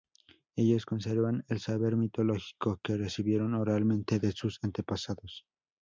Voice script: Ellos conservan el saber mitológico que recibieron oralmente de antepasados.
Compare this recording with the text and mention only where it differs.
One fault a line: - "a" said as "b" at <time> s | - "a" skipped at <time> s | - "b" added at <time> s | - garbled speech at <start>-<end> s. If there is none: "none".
- "sus" added at 4.3 s